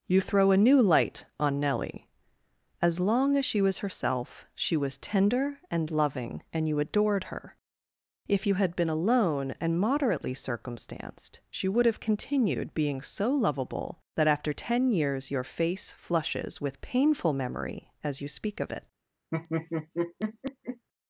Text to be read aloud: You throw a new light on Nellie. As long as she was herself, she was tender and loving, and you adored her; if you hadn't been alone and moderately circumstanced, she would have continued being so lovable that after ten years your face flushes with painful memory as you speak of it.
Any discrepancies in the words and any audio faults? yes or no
yes